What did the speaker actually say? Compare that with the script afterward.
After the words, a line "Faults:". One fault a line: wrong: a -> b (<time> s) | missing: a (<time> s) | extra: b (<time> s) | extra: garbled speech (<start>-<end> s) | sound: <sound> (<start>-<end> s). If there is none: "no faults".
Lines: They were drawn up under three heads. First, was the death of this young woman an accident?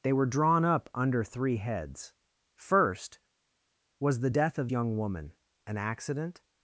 They were drawn up under three heads. First, was the death of young woman an accident?
Faults:
missing: this (4.7 s)